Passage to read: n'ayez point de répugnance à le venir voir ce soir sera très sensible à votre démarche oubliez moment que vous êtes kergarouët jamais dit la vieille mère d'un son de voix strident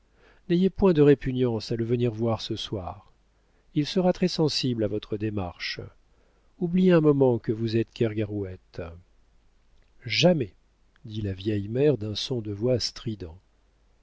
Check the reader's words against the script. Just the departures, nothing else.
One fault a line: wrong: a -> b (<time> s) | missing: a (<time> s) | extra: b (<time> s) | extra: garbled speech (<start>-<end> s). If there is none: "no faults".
extra: il (3.8 s)
extra: un (6.9 s)